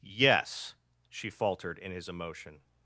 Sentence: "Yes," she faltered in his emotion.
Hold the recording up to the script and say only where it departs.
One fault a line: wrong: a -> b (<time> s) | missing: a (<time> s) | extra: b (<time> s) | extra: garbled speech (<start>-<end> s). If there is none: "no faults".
no faults